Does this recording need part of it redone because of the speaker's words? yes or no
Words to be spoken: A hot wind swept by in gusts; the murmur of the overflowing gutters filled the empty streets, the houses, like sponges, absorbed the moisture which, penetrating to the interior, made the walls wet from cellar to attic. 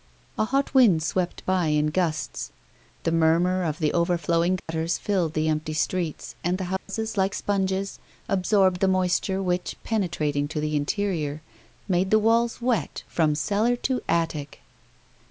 yes